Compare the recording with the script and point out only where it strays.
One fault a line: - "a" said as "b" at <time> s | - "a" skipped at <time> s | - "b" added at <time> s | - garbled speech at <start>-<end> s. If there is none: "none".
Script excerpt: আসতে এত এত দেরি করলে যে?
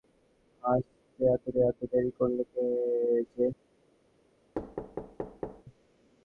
none